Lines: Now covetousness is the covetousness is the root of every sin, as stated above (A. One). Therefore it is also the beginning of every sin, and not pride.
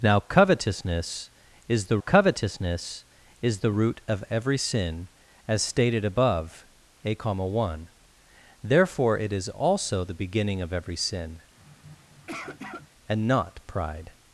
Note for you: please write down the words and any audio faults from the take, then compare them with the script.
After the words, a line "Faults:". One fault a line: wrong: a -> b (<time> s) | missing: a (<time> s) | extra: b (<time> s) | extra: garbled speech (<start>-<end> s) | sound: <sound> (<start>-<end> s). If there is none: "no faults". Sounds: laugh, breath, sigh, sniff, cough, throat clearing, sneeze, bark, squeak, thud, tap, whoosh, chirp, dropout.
Now covetousness is the covetousness is the root of every sin, as stated above (A. One). Therefore it is also the beginning of every sin, and not pride.
Faults:
sound: sniff (11.6-12.9 s)